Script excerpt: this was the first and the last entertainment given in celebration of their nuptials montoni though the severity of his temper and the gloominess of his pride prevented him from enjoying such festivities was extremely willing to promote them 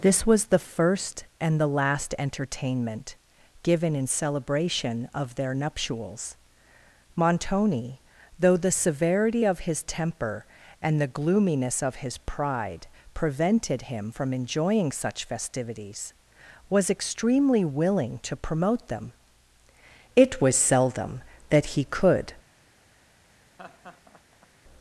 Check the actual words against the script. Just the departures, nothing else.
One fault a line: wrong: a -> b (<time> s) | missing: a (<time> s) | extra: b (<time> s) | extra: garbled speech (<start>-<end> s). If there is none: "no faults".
extra: it was seldom that he could (20.1 s)